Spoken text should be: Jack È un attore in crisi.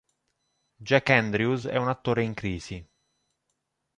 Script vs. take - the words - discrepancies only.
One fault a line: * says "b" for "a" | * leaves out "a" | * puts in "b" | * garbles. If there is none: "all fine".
* puts in "Andrews"